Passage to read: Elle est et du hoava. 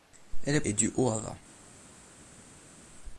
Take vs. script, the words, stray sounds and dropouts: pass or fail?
pass